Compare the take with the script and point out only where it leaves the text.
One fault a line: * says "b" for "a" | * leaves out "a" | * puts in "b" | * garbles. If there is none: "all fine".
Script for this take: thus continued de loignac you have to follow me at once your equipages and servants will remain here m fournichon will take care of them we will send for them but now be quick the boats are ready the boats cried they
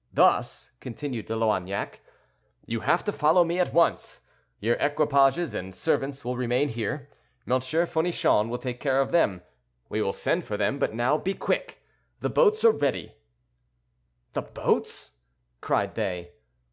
all fine